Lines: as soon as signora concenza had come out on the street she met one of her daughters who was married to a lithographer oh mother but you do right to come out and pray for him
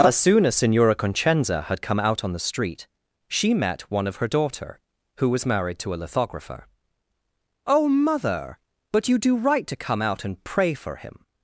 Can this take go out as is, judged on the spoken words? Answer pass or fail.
fail